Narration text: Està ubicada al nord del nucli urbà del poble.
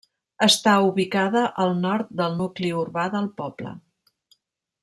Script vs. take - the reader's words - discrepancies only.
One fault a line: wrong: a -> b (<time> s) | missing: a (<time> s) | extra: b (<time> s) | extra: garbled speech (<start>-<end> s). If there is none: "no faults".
no faults